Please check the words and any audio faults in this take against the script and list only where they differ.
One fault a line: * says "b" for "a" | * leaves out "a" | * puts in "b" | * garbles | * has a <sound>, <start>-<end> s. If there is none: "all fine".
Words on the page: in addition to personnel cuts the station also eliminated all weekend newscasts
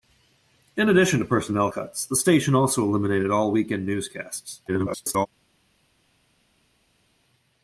* garbles